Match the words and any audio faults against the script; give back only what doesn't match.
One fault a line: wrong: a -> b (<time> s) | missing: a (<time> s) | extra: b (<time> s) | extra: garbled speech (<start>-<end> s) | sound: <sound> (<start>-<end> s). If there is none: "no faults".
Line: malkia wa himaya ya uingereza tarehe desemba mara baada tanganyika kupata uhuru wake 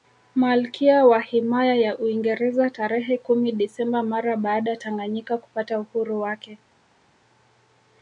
extra: kumi (3.2 s)